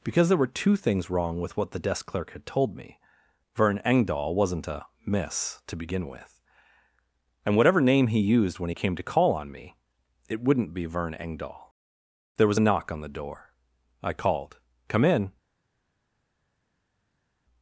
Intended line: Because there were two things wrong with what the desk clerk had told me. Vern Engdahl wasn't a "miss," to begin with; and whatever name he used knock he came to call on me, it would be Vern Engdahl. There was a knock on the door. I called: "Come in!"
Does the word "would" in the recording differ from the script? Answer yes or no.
yes